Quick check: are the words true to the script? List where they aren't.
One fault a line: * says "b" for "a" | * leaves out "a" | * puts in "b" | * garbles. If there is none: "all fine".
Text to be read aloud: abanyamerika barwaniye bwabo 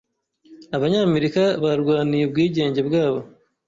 * puts in "ubwigenge"